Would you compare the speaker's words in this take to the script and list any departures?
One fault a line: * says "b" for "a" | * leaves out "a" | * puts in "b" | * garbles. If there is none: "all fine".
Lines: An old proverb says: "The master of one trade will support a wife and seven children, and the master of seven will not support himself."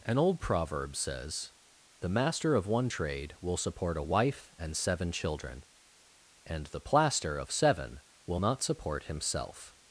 * says "plaster" for "master"